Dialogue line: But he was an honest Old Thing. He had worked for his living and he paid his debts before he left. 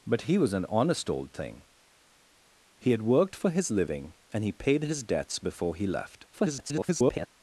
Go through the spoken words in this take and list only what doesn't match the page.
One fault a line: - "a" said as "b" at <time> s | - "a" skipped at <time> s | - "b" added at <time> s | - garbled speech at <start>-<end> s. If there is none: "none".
- garbled speech at 6.3-7.3 s